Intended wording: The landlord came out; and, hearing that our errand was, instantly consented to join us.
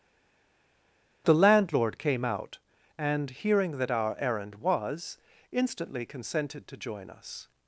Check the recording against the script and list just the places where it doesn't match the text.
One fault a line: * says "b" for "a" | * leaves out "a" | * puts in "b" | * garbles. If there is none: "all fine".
all fine